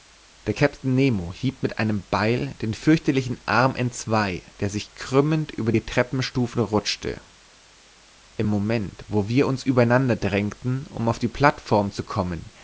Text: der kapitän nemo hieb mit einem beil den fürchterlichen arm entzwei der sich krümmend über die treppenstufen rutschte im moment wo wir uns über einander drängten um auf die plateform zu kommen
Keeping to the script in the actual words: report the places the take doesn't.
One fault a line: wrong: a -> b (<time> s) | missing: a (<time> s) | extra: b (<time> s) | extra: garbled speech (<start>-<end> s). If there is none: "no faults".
no faults